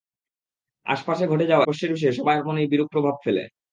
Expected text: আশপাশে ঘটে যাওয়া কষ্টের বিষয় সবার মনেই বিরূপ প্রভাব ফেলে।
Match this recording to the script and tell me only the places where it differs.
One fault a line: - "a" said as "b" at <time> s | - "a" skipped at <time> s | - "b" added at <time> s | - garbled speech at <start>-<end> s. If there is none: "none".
none